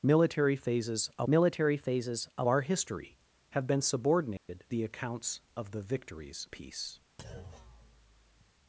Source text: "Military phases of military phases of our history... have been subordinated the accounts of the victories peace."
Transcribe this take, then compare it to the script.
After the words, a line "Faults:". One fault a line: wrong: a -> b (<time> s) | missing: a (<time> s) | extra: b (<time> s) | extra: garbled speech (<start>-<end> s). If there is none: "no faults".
"Military phases of military phases of our history... have been subordinated the accounts of the victories peace."
Faults:
no faults